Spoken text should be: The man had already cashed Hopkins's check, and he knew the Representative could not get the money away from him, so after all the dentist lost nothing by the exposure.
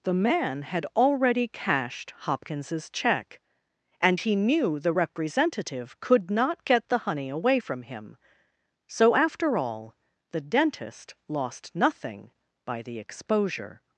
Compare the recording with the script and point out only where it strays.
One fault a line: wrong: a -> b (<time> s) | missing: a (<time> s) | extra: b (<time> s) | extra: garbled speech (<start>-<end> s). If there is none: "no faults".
wrong: money -> honey (7.0 s)